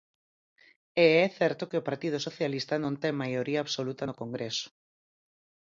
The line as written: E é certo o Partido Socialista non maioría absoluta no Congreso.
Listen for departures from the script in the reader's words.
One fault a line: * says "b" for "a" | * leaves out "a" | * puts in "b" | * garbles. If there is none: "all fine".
* puts in "que"
* puts in "ten"